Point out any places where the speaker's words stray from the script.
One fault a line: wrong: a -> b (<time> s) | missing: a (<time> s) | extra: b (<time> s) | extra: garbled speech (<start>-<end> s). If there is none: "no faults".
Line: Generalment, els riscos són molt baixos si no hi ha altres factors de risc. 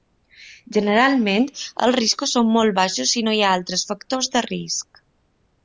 no faults